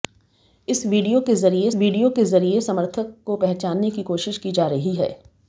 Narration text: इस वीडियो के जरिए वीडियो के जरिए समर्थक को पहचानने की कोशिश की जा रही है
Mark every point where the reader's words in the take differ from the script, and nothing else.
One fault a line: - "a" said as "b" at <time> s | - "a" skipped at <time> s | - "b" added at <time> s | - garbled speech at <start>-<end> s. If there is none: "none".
none